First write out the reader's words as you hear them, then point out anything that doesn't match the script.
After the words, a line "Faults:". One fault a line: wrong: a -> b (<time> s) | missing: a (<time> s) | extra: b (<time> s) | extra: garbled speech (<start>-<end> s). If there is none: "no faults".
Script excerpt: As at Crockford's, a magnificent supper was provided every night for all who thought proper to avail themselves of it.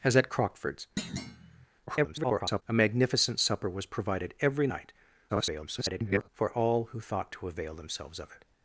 As at Crockford's, [garbled] a magnificent supper was provided every night [garbled] for all who thought to avail themselves of it.
Faults:
extra: garbled speech (1.9-2.6 s)
extra: garbled speech (5.3-6.3 s)
missing: proper (7.3 s)